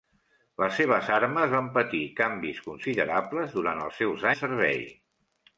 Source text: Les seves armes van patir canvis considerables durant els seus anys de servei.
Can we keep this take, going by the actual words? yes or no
no